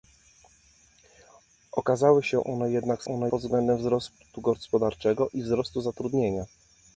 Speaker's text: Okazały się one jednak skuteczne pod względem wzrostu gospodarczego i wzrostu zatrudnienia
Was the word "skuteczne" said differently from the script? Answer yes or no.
yes